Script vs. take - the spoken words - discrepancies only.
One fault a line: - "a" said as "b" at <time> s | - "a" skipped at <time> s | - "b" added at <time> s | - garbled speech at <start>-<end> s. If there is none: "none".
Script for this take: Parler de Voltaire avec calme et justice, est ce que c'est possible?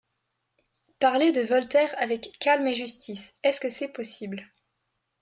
none